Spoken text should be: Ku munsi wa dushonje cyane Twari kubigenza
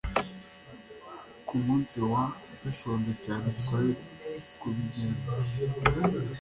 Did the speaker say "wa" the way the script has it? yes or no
yes